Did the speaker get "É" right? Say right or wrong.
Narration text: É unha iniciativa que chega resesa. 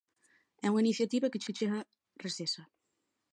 right